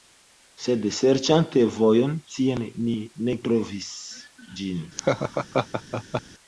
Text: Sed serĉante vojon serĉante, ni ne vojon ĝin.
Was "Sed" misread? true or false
false